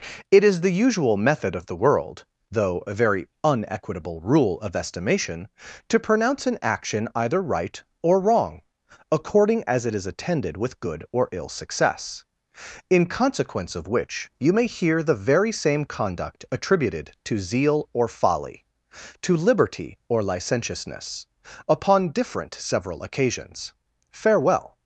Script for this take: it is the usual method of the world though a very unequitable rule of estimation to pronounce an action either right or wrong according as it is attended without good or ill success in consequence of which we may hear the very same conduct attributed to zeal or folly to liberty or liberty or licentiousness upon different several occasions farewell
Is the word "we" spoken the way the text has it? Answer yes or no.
no